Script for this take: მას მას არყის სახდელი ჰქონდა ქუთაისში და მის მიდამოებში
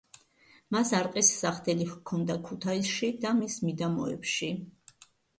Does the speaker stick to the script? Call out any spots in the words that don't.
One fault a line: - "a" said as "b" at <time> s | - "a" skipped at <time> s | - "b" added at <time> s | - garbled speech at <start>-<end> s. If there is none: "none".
- "მას" skipped at 0.9 s